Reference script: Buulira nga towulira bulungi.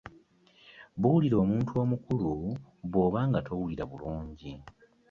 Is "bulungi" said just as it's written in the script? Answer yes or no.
yes